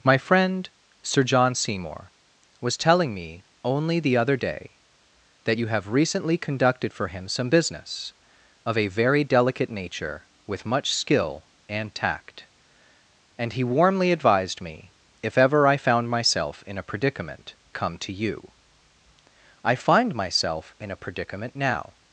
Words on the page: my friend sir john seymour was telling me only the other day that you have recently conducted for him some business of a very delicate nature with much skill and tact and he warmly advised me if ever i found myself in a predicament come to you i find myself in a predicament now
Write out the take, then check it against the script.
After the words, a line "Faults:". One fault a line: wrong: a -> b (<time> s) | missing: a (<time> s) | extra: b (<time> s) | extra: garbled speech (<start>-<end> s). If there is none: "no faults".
my friend sir john seymour was telling me only the other day that you have recently conducted for him some business of a very delicate nature with much skill and tact and he warmly advised me if ever i found myself in a predicament come to you i find myself in a predicament now
Faults:
no faults